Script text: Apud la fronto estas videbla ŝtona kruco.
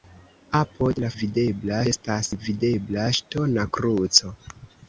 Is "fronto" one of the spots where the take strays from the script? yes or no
yes